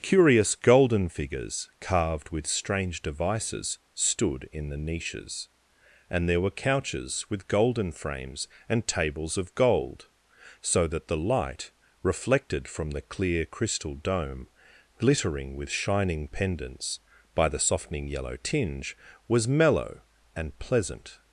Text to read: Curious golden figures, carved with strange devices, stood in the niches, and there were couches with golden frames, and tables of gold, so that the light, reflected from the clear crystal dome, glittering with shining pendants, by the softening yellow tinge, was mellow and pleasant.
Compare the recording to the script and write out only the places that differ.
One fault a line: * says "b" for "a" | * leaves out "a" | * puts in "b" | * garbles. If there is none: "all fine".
all fine